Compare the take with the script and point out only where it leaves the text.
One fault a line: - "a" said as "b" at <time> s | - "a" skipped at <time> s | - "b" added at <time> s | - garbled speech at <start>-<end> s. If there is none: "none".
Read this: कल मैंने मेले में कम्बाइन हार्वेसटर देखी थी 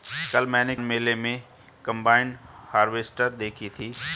none